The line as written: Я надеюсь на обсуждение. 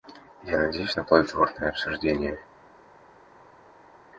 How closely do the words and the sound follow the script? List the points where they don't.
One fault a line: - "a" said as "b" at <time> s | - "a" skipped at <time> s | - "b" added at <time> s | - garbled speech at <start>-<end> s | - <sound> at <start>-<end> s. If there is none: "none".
- "плодотворное" added at 1.0 s